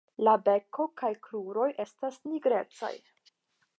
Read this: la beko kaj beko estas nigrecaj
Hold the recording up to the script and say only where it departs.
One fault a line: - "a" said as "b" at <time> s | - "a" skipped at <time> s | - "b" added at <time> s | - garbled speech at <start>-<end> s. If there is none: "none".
- "beko" said as "kruroj" at 1.3 s